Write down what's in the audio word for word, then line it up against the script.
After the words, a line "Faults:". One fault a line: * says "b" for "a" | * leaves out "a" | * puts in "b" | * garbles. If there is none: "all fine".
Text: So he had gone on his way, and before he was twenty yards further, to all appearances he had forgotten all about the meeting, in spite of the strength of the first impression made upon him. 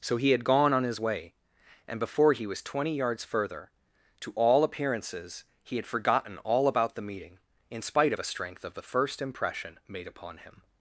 So he had gone on his way, and before he was twenty yards further, to all appearances he had forgotten all about the meeting, in spite of a strength of the first impression made upon him.
Faults:
* says "a" for "the"